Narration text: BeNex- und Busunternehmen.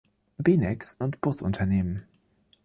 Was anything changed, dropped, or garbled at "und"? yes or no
no